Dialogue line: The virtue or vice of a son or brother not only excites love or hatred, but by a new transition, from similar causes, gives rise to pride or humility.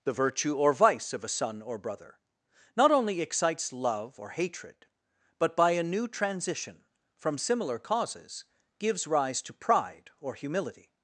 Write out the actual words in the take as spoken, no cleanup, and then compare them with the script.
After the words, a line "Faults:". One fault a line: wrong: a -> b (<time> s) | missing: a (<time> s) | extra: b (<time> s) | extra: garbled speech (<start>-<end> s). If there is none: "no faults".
The virtue or vice of a son or brother not only excites love or hatred, but by a new transition, from similar causes, gives rise to pride or humility.
Faults:
no faults